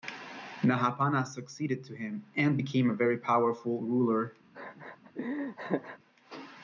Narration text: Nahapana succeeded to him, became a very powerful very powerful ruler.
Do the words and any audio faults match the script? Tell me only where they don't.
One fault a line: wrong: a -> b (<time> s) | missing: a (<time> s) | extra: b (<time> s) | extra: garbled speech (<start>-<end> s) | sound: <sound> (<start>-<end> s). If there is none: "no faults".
extra: and (2.4 s)
missing: very powerful (3.8 s)
sound: laugh (4.5-6.0 s)